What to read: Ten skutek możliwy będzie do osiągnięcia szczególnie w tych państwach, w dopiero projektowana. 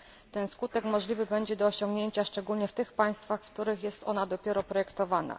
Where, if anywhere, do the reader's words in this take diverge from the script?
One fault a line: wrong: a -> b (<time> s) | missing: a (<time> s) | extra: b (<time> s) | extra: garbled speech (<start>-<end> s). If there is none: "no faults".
extra: których jest ona (3.5 s)